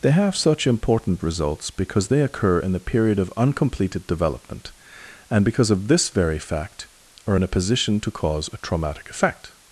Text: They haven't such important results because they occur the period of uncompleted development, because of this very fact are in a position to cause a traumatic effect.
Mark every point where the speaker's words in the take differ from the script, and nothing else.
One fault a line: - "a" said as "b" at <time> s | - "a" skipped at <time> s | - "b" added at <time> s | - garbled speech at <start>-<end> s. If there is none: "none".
- "haven't" said as "have" at 0.1 s
- "in" added at 2.6 s
- "and" added at 5.3 s